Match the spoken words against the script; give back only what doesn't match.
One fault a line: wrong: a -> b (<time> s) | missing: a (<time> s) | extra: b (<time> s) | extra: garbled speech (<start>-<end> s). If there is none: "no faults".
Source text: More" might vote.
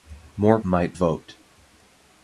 no faults